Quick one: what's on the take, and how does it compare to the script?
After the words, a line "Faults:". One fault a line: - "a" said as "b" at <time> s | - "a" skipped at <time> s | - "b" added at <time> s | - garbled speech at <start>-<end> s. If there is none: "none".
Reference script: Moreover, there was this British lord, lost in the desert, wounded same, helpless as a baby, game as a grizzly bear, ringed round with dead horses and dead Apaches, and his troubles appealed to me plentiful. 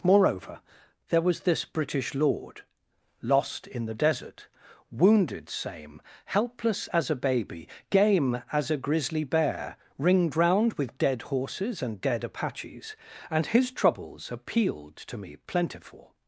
Moreover, there was this British lord, lost in the desert, wounded same, helpless as a baby, game as a grizzly bear, ringed round with dead horses and dead Apaches, and his troubles appealed to me plentiful.
Faults:
none